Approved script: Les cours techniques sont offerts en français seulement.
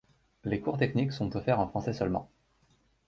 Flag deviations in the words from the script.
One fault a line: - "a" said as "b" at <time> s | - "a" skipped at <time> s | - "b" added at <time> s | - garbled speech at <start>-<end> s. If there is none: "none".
none